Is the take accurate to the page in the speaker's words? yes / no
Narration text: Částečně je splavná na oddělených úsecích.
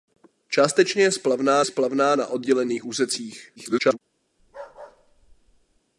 no